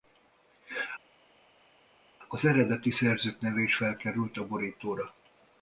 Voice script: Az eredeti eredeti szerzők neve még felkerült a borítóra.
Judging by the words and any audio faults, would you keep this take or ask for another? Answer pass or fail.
fail